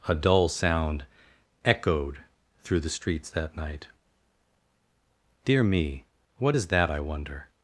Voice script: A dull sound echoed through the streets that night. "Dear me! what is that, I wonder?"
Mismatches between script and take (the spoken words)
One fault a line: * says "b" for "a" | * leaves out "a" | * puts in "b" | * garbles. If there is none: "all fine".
all fine